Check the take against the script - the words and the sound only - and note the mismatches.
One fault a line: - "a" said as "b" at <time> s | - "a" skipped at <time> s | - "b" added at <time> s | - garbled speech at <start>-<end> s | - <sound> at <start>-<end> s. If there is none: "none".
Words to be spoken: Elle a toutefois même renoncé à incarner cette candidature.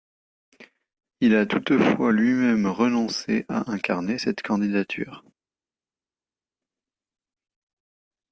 - "Elle" said as "Il" at 1.2 s
- "lui" added at 2.1 s